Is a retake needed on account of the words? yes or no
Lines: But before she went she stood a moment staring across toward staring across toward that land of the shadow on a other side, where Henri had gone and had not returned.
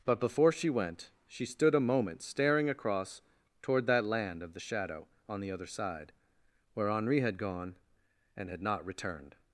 yes